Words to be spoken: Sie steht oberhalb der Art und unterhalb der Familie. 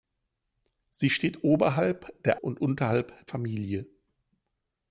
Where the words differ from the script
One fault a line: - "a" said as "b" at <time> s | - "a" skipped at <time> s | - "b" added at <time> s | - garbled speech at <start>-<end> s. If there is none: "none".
- "Art" skipped at 2.4 s
- "der" skipped at 3.3 s